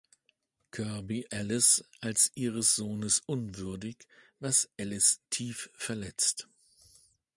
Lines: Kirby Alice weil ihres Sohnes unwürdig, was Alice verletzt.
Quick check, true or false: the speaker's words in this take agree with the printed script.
false